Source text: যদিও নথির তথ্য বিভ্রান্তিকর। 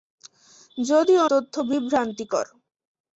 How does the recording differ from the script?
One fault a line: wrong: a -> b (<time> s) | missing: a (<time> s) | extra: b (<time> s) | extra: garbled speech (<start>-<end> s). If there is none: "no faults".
missing: নথির (1.2 s)